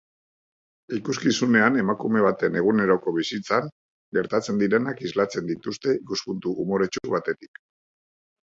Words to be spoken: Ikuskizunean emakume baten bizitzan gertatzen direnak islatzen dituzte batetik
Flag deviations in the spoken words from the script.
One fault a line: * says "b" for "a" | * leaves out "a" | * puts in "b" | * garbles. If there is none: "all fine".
* puts in "eguneroko"
* puts in "ikuspuntu umoretsu"